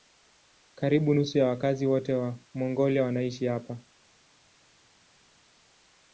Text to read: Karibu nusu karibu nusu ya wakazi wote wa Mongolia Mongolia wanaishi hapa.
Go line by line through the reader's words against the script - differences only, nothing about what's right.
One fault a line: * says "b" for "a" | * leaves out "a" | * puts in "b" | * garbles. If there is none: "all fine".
* leaves out "karibu nusu"
* leaves out "Mongolia"